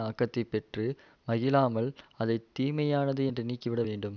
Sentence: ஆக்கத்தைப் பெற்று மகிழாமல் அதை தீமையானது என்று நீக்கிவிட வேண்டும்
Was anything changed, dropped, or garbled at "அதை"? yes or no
no